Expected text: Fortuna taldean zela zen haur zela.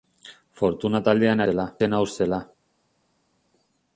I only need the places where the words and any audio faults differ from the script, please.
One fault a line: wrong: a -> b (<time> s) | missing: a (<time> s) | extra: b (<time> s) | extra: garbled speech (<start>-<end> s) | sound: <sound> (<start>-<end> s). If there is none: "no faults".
no faults